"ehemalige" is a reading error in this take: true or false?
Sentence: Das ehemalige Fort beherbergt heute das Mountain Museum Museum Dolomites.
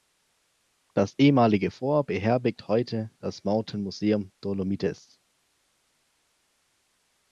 false